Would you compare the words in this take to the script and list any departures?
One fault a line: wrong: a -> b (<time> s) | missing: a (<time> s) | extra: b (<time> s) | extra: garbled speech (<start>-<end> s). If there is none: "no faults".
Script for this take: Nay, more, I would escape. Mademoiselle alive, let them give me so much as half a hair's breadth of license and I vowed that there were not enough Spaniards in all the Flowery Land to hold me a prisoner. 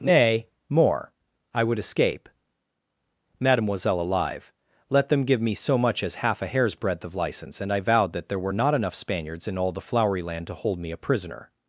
no faults